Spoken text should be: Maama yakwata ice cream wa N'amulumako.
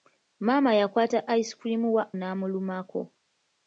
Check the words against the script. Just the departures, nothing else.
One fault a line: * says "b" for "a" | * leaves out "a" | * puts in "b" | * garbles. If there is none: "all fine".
all fine